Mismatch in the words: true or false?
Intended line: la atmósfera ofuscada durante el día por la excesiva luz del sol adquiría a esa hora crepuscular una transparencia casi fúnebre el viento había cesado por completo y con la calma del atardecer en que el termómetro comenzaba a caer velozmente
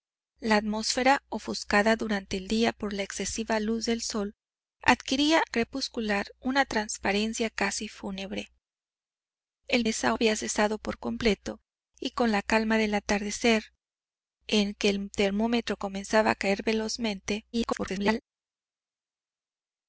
true